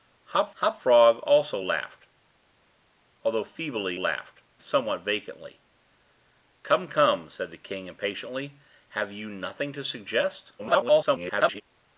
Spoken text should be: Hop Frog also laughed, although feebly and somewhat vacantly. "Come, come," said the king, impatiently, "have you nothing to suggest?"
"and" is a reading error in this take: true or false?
true